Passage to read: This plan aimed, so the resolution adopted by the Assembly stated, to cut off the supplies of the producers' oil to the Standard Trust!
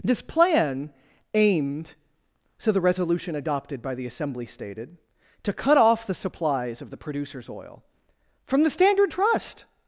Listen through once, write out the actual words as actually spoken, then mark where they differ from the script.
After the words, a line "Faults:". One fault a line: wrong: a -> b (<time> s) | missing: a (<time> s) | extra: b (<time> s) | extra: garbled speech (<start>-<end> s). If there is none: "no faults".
This plan aimed, so the resolution adopted by the Assembly stated, to cut off the supplies of the producers' oil from the Standard Trust!
Faults:
wrong: to -> from (8.4 s)